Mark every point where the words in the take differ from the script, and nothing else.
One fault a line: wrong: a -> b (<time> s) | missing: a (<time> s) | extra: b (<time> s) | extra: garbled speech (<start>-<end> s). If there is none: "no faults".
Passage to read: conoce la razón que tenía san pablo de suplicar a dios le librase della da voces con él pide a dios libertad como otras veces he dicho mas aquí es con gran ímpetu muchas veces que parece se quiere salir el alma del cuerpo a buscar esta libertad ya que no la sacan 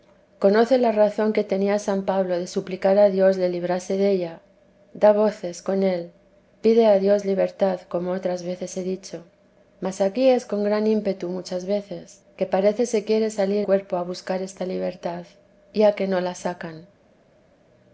missing: el alma del (13.7 s)